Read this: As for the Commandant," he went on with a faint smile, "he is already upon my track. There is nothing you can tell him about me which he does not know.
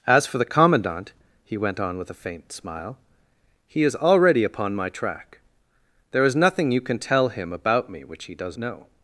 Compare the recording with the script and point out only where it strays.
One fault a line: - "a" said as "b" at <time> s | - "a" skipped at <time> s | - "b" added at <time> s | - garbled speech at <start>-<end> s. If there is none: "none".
- "not" skipped at 8.6 s